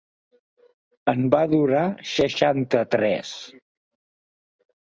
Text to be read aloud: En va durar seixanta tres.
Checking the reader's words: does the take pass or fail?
pass